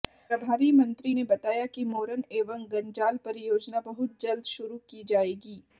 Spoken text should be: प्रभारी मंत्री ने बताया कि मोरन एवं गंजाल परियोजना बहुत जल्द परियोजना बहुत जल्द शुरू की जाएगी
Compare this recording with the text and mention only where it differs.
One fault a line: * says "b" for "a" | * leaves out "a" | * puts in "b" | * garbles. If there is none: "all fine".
* leaves out "परियोजना बहुत जल्द"